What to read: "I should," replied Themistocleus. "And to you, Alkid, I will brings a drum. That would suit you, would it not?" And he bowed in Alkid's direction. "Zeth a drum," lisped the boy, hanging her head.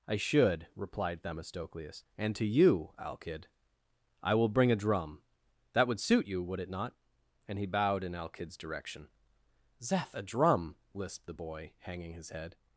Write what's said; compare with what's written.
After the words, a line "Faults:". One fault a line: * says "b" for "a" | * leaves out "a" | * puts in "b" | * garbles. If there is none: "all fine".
"I should," replied Themistocleus. "And to you, Alkid, I will bring a drum. That would suit you, would it not?" And he bowed in Alkid's direction. "Zeth a drum," lisped the boy, hanging his head.
Faults:
* says "bring" for "brings"
* says "his" for "her"